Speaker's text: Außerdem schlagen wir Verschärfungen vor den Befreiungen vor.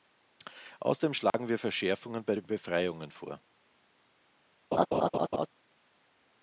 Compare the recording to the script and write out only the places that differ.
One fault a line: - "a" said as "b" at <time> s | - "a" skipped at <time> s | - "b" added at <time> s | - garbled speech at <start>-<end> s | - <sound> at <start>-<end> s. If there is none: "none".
- dropout at 1.3-1.3 s
- "vor" said as "bei" at 2.2 s
- laugh at 4.7-5.5 s